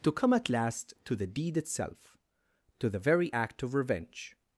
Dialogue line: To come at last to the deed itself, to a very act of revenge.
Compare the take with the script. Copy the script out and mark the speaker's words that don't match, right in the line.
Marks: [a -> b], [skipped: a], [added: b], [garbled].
To come at last to the deed itself, to [a -> the] very act of revenge.